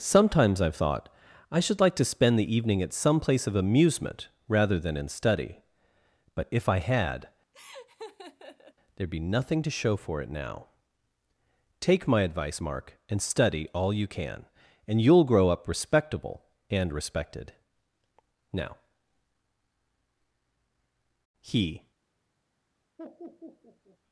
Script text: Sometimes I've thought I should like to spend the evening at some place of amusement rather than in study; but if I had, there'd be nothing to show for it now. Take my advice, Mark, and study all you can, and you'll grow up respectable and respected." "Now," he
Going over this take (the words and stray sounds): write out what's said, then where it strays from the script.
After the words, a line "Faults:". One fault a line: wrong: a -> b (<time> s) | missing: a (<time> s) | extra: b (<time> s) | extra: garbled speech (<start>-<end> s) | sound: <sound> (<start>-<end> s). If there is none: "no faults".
Sometimes I've thought I should like to spend the evening at some place of amusement rather than in study; but if I had, there'd be nothing to show for it now. Take my advice, Mark, and study all you can, and you'll grow up respectable and respected." "Now," he
Faults:
sound: laugh (7.5-8.7 s)
sound: laugh (23.0-24.0 s)